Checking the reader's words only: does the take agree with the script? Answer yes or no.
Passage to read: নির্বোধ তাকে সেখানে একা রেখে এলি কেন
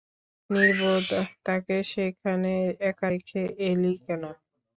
yes